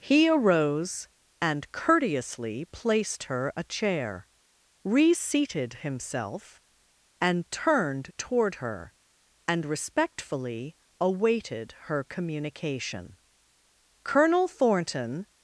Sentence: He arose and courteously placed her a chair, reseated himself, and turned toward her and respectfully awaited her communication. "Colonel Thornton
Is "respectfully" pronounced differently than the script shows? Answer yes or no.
no